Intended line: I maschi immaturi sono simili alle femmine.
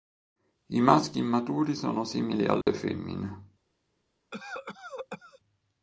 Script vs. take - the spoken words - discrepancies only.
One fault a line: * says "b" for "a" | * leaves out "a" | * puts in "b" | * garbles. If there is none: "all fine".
all fine